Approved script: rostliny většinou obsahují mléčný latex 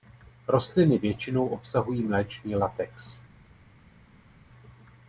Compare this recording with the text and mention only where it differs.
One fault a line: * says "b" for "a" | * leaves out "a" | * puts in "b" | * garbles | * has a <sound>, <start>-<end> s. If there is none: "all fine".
all fine